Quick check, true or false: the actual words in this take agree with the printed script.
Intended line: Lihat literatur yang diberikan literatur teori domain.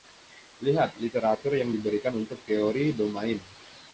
false